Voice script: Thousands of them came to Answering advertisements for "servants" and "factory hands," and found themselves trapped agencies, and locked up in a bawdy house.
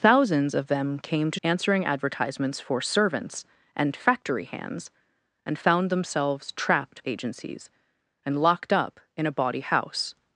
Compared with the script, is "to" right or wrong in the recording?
right